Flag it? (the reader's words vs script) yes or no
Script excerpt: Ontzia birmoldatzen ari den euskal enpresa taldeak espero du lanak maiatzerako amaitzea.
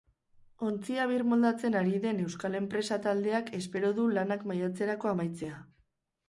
no